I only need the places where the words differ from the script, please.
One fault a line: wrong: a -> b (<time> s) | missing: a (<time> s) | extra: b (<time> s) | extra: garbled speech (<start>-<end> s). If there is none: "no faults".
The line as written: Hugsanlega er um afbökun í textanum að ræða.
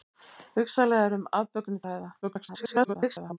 missing: textanum (1.9 s)
extra: garbled speech (2.2-3.4 s)